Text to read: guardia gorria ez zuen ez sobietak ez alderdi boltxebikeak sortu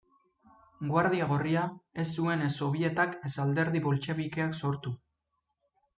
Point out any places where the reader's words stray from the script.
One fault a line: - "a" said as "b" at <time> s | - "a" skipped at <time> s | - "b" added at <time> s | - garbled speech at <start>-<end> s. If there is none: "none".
none